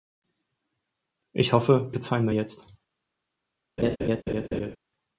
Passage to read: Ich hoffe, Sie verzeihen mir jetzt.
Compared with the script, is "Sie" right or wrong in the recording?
wrong